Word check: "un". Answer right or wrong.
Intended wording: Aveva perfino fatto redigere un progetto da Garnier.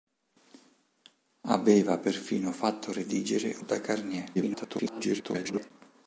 wrong